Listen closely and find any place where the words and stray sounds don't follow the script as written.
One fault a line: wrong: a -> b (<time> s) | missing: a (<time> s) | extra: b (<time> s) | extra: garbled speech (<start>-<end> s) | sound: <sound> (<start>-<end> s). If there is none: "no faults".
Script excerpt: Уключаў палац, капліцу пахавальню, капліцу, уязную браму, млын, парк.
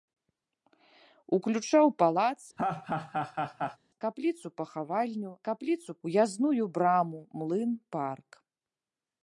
sound: laugh (2.6-3.8 s)